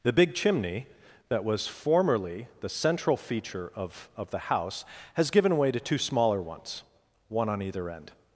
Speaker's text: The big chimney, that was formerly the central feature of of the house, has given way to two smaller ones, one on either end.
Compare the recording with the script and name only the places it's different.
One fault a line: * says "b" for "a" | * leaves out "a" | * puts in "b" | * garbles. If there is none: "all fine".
all fine